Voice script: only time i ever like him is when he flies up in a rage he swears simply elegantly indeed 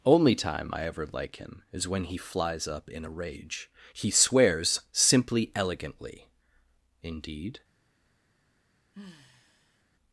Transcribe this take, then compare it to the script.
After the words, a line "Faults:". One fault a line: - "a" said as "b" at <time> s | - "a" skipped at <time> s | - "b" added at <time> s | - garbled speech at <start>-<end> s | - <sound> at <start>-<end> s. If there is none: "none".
only time i ever like him is when he flies up in a rage he swears simply elegantly indeed
Faults:
- sigh at 8.9-9.8 s